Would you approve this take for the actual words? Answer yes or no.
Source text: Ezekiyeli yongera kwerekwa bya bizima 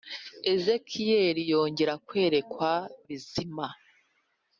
no